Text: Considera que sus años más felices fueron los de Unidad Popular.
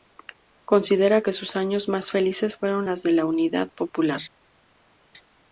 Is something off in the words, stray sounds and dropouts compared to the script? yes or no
yes